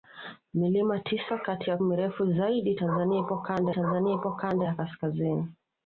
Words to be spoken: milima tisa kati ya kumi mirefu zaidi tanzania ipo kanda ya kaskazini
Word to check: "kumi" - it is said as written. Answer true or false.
false